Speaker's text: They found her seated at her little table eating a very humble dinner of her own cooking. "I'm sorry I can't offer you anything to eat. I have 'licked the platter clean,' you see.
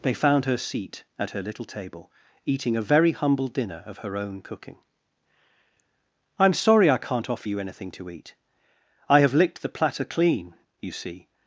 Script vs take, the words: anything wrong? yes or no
yes